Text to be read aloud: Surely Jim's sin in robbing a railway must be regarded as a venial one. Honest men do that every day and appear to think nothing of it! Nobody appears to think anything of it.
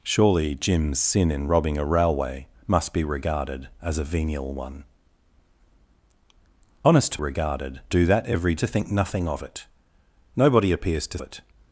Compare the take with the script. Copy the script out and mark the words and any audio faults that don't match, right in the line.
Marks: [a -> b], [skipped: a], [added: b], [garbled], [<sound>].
Surely Jim's sin in robbing a railway must be regarded as a venial one. Honest [men -> regarded] do that every [skipped: day and appear] to think nothing of it! Nobody appears to [skipped: think anything of] it.